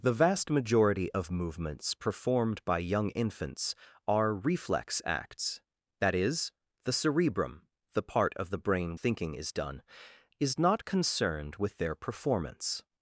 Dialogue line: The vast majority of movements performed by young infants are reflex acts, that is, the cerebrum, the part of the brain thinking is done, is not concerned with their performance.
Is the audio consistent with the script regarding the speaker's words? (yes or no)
yes